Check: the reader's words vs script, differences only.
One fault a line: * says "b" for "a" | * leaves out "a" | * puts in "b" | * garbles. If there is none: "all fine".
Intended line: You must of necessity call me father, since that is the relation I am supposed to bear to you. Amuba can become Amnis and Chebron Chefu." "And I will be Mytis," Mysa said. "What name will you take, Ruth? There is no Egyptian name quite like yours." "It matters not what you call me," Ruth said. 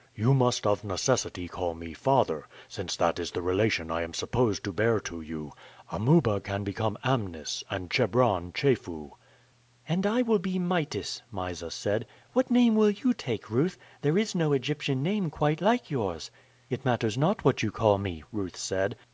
all fine